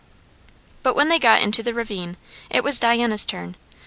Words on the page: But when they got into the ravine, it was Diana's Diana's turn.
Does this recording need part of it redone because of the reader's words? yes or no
yes